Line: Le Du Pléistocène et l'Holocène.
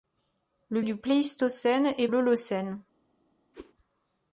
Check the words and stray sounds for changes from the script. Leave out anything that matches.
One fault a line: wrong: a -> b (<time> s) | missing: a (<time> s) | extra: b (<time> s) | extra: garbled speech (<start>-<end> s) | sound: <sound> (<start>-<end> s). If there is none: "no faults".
sound: whoosh (3.5-3.7 s)